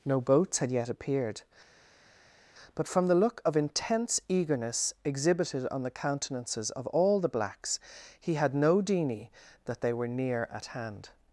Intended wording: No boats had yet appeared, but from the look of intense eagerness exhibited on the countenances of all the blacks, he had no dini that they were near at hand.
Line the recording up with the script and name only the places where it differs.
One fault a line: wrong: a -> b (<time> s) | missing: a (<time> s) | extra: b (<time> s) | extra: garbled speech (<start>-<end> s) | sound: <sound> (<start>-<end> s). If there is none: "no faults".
no faults